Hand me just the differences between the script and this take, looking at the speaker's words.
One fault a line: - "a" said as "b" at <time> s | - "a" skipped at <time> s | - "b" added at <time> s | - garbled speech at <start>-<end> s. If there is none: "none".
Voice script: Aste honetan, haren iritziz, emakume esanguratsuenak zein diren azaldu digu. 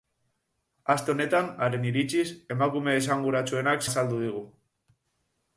- "zein diren" skipped at 3.9 s